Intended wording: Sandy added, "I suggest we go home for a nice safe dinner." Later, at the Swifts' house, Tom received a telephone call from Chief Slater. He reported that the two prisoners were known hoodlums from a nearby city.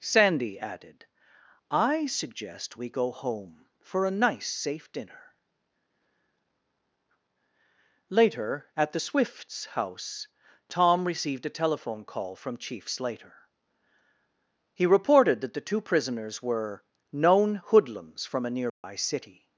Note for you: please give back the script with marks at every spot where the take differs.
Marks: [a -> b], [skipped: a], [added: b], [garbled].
Sandy added, "I suggest we go home for a nice safe dinner." Later, at the Swifts' house, Tom received a telephone call from Chief Slater. He reported that the two prisoners were known hoodlums from a nearby city.